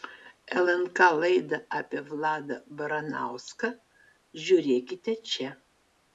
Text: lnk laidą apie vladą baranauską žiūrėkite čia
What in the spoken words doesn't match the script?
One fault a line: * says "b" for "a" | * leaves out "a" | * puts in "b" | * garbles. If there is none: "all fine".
all fine